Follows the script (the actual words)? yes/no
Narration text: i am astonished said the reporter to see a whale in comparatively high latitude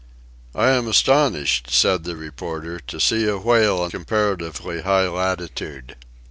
yes